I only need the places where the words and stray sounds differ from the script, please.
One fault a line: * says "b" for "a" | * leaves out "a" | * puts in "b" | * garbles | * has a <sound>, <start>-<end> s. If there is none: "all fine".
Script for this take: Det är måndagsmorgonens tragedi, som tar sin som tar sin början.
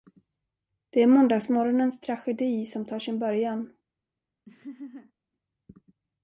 * leaves out "som tar sin"
* has a laugh, 4.5-5.1 s